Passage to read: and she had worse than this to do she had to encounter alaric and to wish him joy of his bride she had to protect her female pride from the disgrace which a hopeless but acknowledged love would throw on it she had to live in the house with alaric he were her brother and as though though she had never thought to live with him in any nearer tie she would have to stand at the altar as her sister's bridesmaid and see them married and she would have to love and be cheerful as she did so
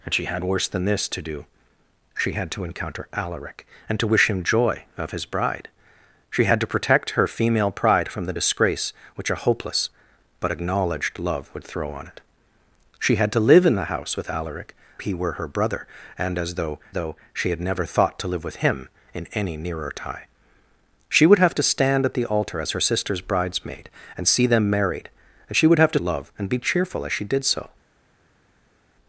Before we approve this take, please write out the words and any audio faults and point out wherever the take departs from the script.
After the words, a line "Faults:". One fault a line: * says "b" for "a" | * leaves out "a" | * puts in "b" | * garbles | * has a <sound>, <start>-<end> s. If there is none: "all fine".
and she had worse than this to do she had to encounter alaric and to wish him joy of his bride she had to protect her female pride from the disgrace which a hopeless but acknowledged love would throw on it she had to live in the house with alaric he were her brother and as though though she had never thought to live with him in any nearer tie she would have to stand at the altar as her sister's bridesmaid and see them married and she would have to love and be cheerful as she did so
Faults:
all fine